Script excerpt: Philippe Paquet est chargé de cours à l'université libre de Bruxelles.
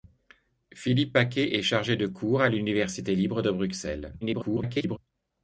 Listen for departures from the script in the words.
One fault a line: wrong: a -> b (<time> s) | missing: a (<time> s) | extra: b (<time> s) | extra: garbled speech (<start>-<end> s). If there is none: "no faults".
extra: garbled speech (4.2-5.0 s)